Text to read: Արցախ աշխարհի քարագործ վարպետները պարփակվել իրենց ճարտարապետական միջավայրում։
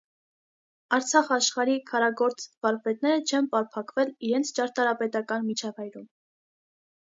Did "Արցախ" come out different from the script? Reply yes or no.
no